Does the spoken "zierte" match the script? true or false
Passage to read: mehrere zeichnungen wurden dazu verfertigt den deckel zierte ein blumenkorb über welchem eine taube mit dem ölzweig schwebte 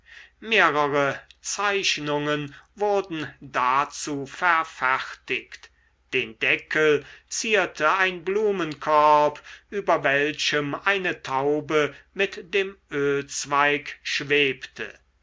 true